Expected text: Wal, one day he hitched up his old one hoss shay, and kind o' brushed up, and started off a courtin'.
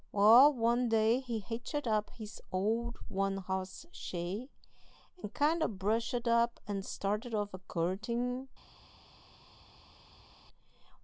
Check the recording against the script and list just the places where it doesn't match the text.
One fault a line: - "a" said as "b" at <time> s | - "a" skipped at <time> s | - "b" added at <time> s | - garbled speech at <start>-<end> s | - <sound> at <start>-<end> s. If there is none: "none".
none